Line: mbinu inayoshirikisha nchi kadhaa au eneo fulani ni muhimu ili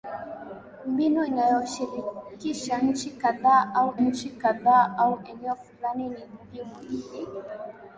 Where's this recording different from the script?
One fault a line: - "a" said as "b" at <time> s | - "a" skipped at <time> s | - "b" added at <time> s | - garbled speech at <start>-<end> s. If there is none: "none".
- "nchi kadhaa au" added at 3.9 s